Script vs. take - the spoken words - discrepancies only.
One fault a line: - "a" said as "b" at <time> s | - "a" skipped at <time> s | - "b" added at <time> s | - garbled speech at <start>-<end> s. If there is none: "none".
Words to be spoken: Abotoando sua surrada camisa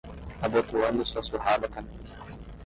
none